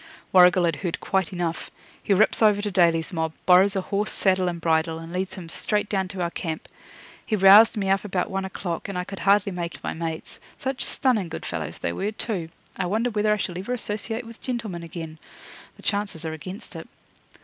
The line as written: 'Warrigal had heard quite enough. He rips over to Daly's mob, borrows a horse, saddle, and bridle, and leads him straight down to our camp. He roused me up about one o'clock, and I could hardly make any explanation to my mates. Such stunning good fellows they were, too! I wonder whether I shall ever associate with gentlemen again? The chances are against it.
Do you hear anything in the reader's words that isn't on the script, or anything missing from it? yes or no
yes